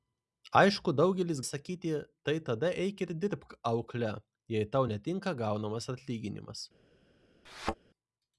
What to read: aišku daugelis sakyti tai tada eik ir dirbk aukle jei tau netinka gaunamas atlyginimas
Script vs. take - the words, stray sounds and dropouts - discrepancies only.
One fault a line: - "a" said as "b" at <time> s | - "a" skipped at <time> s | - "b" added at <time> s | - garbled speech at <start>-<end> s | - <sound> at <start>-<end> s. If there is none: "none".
- thud at 7.4-7.8 s